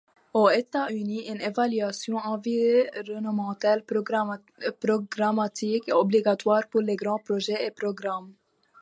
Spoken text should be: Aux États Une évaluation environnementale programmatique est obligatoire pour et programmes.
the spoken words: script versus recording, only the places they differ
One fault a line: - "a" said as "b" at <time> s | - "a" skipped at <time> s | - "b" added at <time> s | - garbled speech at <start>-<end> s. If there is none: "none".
- "Unis" added at 0.9 s
- "les grands projets" added at 6.8 s